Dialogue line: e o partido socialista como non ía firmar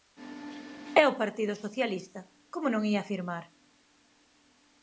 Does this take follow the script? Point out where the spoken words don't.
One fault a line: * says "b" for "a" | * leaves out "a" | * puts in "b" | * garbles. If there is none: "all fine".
all fine